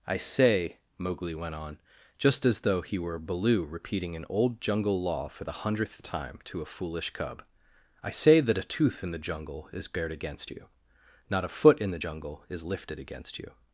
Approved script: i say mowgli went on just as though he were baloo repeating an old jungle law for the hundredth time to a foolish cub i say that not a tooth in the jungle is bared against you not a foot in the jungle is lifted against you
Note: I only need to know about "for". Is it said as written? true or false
true